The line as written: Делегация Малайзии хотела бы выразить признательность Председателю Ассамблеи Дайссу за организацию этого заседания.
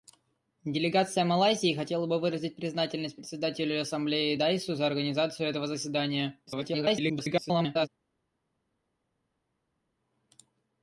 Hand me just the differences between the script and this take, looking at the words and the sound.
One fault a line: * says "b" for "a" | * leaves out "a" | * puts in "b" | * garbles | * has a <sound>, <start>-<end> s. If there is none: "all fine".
* garbles